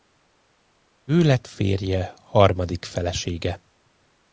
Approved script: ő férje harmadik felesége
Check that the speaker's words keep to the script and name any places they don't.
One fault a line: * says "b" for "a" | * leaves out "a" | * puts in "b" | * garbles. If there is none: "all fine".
* puts in "lett"